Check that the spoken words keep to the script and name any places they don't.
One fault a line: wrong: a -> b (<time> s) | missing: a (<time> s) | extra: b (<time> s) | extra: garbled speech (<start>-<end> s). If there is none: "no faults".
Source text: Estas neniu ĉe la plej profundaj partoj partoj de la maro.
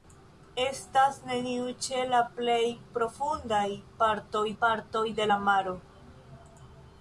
no faults